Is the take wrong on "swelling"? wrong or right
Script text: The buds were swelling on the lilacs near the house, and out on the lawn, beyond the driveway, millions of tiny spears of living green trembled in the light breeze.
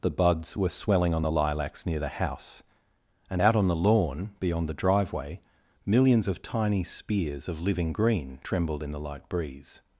right